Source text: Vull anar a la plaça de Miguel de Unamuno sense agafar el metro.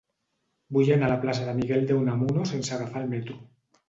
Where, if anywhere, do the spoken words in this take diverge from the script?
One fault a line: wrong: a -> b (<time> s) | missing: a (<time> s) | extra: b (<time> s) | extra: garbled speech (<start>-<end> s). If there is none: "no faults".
no faults